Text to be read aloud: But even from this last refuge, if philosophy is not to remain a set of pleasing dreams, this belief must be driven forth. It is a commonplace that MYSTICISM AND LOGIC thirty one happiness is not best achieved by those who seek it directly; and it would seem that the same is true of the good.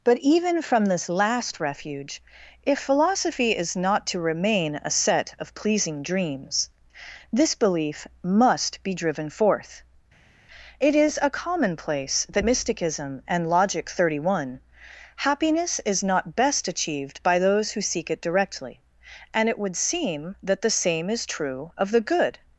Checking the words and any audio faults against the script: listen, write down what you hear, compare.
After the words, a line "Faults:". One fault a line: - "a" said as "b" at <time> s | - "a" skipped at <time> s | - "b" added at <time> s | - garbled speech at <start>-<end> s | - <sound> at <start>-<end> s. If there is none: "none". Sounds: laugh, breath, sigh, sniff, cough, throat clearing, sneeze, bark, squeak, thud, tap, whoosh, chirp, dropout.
But even from this last refuge, if philosophy is not to remain a set of pleasing dreams, this belief must be driven forth. It is a commonplace that MYSTICISM AND LOGIC thirty one happiness is not best achieved by those who seek it directly; and it would seem that the same is true of the good.
Faults:
none